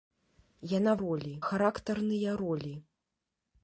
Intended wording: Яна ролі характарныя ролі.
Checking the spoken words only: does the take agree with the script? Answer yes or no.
yes